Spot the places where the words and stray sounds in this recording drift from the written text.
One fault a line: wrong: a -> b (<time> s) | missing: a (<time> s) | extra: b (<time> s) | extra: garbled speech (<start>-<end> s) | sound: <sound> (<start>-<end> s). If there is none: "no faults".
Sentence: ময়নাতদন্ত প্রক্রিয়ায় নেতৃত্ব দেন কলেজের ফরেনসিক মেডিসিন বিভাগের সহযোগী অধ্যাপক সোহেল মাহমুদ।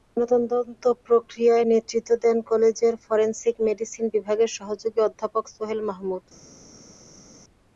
no faults